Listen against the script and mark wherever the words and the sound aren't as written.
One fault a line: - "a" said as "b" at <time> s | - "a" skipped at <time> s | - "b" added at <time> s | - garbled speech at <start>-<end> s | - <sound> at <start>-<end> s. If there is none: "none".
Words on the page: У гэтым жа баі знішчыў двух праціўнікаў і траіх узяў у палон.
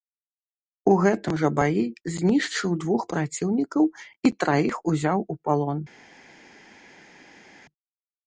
none